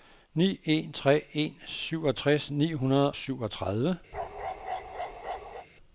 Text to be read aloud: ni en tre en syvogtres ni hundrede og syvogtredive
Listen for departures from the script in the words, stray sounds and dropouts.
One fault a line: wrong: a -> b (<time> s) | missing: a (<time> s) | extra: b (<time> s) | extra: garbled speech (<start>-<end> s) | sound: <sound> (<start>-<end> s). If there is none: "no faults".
missing: og (3.1 s)
sound: bark (4.1-5.7 s)